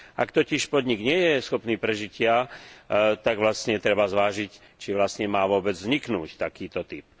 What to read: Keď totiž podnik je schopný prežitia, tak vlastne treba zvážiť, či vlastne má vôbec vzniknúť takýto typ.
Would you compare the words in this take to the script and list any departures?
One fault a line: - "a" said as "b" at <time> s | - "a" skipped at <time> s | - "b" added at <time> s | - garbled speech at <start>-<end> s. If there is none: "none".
- "Keď" said as "Ak" at 0.1 s
- "nie" added at 1.0 s